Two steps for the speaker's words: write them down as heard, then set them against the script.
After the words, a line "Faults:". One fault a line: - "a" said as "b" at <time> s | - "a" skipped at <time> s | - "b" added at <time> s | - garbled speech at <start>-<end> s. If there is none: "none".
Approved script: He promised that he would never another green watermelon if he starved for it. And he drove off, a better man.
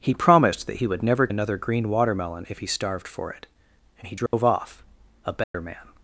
He promised that he would never another green watermelon if he starved for it. And he drove off, a better man.
Faults:
none